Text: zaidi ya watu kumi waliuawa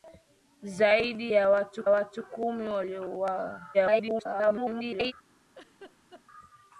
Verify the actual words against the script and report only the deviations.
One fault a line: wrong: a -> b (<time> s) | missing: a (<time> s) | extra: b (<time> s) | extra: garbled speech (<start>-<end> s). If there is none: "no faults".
extra: watu (1.9 s)
extra: garbled speech (3.7-5.1 s)